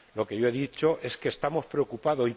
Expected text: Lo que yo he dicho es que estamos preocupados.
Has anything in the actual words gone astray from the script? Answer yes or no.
no